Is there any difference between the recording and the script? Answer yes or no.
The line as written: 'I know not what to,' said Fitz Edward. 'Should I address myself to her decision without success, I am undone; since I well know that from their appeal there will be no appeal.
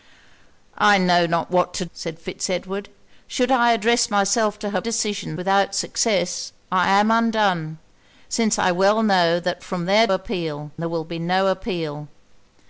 no